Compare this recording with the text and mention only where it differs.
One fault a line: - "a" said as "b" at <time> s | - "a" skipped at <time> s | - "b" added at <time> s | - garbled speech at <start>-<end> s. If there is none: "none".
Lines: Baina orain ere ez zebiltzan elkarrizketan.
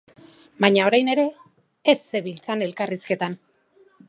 none